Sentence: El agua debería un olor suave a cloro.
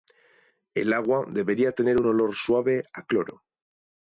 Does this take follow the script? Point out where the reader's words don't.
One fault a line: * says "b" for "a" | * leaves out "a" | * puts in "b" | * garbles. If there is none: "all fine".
* puts in "tener"